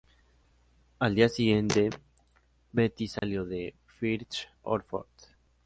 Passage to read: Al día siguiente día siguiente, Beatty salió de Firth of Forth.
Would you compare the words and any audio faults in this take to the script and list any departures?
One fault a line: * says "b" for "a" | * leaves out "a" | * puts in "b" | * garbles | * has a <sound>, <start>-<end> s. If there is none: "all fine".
* leaves out "día siguiente"
* has a dropout, 3.2-3.2 s